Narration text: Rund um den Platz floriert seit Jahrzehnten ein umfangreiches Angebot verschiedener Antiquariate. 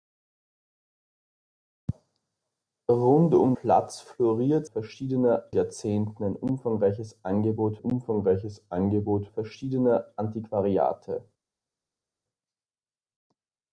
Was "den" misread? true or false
true